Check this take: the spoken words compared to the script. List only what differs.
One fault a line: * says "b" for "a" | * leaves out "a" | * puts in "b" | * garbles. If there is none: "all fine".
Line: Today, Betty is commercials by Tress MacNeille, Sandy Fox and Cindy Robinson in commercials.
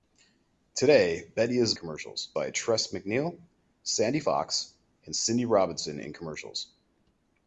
all fine